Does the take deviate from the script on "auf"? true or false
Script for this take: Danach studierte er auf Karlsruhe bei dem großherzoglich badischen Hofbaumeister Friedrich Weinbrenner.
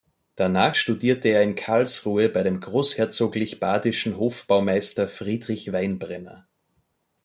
true